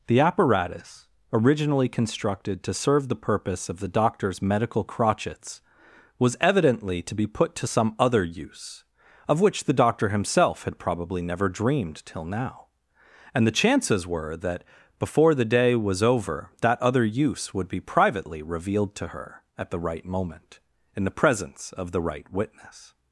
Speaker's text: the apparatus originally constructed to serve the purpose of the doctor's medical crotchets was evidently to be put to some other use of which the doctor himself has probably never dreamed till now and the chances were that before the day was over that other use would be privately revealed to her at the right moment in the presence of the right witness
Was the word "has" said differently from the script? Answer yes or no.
yes